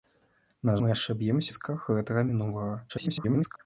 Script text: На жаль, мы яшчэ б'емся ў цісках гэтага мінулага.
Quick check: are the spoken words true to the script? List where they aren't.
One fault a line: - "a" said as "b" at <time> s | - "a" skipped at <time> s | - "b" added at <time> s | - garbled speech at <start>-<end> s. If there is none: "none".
- "жаль" skipped at 0.7 s
- "ў" skipped at 1.5 s
- garbled speech at 2.9-3.6 s